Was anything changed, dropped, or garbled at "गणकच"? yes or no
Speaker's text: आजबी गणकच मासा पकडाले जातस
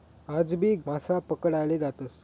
yes